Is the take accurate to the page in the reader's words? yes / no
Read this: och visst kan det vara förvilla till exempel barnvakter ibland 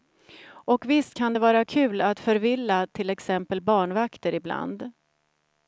no